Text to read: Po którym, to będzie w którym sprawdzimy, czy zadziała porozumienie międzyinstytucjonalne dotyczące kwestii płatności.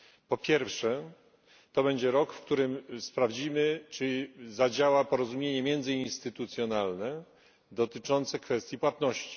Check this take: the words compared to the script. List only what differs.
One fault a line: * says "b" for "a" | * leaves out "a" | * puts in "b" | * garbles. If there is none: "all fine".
* says "pierwsze" for "którym"
* puts in "rok"